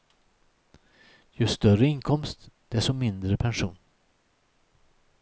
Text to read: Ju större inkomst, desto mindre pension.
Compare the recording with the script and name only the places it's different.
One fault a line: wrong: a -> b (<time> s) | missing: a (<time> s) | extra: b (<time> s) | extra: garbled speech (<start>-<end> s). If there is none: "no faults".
no faults